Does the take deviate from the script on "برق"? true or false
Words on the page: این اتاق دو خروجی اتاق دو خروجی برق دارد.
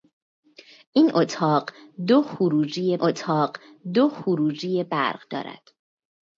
false